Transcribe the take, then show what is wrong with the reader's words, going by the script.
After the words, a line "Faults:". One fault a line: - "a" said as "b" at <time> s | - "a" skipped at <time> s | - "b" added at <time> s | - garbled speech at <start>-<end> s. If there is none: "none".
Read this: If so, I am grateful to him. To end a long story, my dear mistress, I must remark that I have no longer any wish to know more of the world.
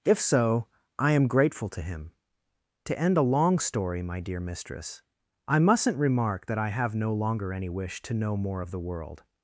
If so, I am grateful to him. To end a long story, my dear mistress, I mustn't remark that I have no longer any wish to know more of the world.
Faults:
- "must" said as "mustn't" at 5.6 s